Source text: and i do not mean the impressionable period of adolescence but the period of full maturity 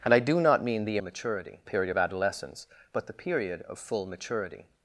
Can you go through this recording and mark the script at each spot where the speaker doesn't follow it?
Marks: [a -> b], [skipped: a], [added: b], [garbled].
and i do not mean the [impressionable -> maturity] period of adolescence but the period of full maturity